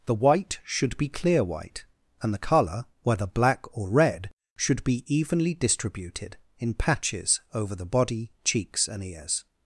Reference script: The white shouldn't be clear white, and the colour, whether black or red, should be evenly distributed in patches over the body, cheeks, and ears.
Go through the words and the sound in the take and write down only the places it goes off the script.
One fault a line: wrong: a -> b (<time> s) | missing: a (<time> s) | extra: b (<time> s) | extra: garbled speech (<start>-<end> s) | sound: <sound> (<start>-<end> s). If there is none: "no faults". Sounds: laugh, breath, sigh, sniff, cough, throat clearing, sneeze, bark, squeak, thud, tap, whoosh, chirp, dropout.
wrong: shouldn't -> should (0.6 s)